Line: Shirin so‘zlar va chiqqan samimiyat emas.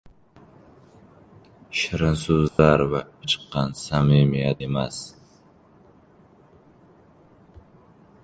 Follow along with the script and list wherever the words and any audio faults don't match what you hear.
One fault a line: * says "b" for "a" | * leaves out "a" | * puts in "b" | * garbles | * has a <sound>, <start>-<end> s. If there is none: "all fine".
* has a dropout, 2.5-2.6 s